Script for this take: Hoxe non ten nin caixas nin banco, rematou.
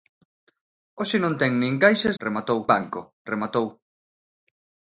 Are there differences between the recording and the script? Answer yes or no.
yes